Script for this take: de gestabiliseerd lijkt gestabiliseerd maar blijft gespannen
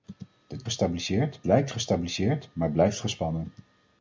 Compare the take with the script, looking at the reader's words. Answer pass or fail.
pass